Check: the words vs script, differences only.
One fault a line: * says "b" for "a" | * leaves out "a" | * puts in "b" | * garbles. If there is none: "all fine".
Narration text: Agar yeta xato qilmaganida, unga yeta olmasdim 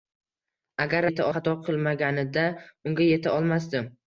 all fine